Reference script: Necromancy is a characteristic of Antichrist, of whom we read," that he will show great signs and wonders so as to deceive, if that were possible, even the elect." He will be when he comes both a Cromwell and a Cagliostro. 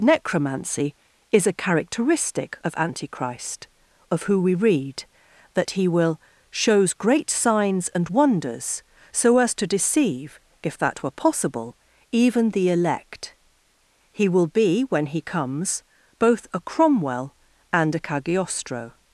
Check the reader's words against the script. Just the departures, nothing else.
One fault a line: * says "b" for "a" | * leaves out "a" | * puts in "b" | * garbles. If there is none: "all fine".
* says "who" for "whom"
* says "shows" for "show"